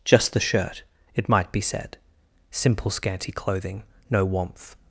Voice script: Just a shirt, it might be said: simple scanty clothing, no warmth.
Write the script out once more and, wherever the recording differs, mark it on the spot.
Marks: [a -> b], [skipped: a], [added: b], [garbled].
Just [a -> the] shirt, it might be said: simple scanty clothing, no warmth.